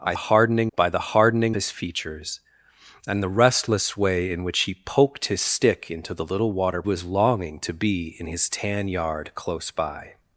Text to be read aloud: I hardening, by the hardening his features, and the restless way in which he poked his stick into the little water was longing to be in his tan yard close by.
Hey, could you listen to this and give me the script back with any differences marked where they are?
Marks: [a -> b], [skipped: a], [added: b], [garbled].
I hardening, by the hardening his features, and the restless way in which he poked his stick into the little water was longing to be in his tan yard close by.